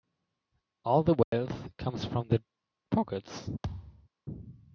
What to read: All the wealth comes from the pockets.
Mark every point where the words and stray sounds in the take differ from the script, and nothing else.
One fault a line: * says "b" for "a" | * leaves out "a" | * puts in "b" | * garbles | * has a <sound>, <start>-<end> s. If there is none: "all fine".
* has a dropout, 1.2-1.3 s
* has a thud, 3.6-4.1 s